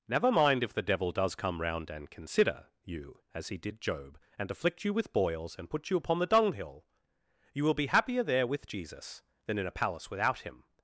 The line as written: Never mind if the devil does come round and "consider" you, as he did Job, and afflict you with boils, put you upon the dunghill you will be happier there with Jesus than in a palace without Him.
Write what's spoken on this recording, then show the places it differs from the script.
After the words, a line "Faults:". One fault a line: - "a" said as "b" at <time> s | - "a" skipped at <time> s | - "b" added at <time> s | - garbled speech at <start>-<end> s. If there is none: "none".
Never mind if the devil does come round and "consider" you, as he did Job, and afflict you with boils, and put you upon the dunghill you will be happier there with Jesus than in a palace without Him.
Faults:
- "and" added at 5.6 s